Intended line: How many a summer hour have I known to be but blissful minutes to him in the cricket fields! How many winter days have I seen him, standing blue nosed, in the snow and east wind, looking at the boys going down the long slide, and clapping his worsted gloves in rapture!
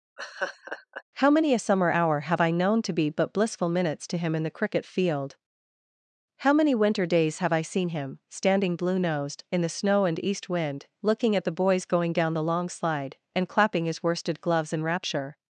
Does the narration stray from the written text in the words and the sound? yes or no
yes